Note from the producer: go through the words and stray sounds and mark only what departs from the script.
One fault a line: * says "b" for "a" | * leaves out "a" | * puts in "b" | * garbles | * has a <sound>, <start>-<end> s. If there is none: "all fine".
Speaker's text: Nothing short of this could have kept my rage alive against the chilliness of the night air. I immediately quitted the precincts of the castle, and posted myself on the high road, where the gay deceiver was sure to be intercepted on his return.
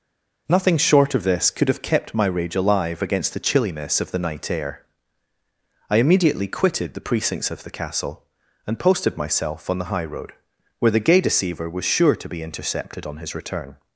all fine